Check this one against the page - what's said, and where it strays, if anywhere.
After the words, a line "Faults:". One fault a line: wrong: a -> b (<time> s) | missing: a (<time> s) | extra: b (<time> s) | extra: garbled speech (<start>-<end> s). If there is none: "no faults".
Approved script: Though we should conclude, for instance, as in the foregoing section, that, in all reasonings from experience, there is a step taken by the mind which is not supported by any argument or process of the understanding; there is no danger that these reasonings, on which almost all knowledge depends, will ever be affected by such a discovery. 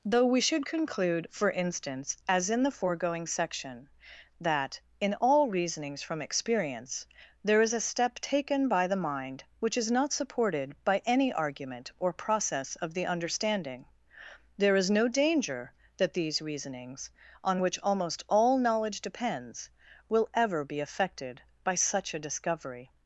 Though we should conclude, for instance, as in the foregoing section, that, in all reasonings from experience, there is a step taken by the mind which is not supported by any argument or process of the understanding; there is no danger that these reasonings, on which almost all knowledge depends, will ever be affected by such a discovery.
Faults:
no faults